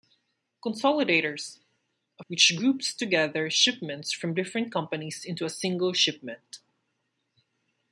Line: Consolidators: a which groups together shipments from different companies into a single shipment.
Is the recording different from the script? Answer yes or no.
no